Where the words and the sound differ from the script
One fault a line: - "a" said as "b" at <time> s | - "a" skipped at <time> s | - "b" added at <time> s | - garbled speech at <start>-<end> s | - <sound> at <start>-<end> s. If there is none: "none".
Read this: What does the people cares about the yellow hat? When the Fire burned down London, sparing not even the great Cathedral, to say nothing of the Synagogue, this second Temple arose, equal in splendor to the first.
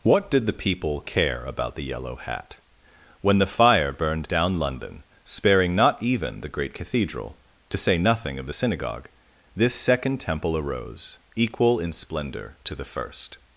- "does" said as "did" at 0.3 s
- "cares" said as "care" at 1.0 s